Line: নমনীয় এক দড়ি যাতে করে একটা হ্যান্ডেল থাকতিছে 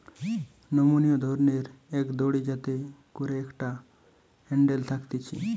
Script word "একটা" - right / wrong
right